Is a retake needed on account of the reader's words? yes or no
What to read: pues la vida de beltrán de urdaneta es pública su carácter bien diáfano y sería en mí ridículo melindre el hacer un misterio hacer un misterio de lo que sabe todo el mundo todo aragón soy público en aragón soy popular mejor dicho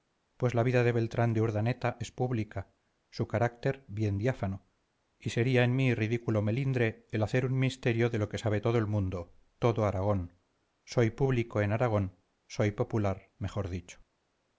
yes